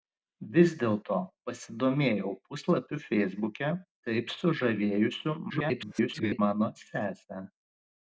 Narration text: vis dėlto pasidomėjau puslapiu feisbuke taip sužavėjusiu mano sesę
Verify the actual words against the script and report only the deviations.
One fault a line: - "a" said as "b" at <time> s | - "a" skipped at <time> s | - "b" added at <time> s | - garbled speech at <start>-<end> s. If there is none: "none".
- garbled speech at 5.5-6.4 s